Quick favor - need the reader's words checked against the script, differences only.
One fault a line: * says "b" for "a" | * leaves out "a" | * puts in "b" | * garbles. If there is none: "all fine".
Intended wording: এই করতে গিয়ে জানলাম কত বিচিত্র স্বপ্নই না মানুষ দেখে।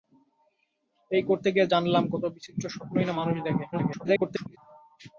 * garbles